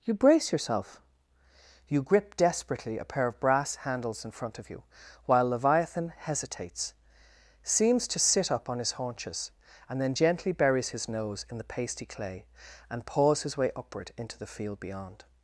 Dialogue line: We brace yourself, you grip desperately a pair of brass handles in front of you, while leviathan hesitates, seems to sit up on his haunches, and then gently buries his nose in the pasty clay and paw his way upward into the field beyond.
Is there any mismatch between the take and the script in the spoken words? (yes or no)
yes